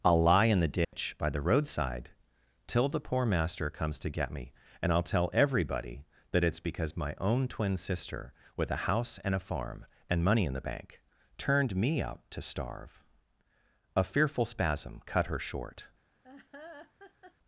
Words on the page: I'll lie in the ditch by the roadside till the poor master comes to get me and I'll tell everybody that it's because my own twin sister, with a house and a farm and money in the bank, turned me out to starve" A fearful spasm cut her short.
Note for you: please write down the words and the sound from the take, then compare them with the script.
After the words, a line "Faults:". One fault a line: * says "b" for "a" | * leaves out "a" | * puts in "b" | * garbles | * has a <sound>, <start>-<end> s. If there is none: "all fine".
I'll lie in the ditch by the roadside till the poor master comes to get me and I'll tell everybody that it's because my own twin sister, with a house and a farm and money in the bank, turned me out to starve" A fearful spasm cut her short.
Faults:
* has a dropout, 0.8-0.9 s
* has a laugh, 16.2-17.3 s